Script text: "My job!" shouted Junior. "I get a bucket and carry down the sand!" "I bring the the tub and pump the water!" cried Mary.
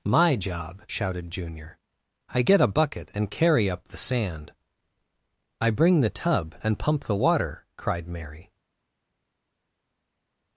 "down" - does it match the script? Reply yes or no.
no